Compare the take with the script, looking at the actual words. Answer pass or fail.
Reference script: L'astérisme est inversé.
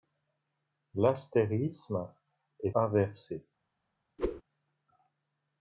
pass